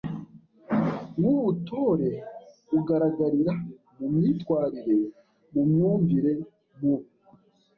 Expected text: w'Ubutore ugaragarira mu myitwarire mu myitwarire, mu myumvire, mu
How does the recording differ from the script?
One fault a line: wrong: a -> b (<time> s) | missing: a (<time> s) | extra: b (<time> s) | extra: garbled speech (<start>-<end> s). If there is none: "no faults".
missing: myitwarire mu (5.6 s)